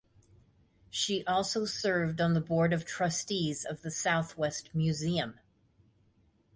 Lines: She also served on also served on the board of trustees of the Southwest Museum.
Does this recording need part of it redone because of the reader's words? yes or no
yes